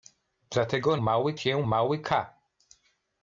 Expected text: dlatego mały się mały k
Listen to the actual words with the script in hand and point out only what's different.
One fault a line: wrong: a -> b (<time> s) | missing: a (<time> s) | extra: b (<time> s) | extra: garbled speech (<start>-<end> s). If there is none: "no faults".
no faults